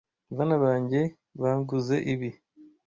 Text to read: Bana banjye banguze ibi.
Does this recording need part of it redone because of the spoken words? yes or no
no